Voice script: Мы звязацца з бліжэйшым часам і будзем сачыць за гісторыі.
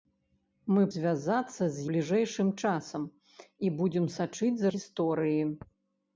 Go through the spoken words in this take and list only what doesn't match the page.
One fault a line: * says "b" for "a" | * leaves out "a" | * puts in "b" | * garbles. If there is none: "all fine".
all fine